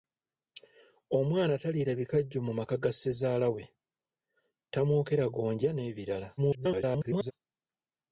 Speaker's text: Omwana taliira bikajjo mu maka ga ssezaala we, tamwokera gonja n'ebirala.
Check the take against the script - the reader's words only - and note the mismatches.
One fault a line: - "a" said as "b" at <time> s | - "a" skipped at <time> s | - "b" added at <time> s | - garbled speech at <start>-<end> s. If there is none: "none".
- garbled speech at 6.4-7.3 s